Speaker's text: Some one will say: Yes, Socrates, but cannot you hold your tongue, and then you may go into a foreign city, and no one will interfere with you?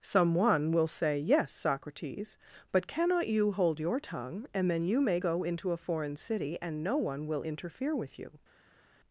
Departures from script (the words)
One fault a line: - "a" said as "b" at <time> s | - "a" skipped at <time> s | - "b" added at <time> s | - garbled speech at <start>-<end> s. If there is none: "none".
none